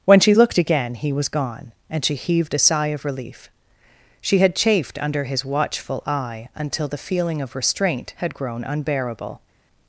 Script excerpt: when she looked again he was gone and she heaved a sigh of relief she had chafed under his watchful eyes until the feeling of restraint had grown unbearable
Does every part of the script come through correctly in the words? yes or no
no